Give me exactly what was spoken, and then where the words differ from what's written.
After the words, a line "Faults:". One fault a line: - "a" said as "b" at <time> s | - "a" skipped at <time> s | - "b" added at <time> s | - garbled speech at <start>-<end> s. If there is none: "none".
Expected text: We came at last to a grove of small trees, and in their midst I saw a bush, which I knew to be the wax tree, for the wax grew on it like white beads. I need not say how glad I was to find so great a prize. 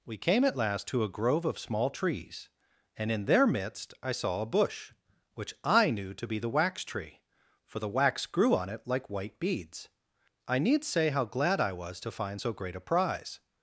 We came at last to a grove of small trees, and in their midst I saw a bush, which I knew to be the wax tree, for the wax grew on it like white beads. I need say how glad I was to find so great a prize.
Faults:
- "not" skipped at 10.8 s